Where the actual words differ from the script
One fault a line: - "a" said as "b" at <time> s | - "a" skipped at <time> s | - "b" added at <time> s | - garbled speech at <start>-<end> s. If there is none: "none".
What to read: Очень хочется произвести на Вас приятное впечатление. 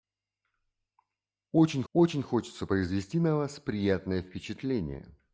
- "очень" added at 1.9 s